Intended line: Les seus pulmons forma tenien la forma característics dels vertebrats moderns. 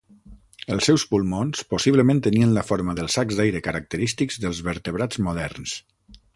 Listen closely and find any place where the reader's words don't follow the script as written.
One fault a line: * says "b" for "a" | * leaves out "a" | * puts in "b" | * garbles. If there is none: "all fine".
* says "Els" for "Les"
* says "possiblement" for "forma"
* puts in "dels sacs d'aire"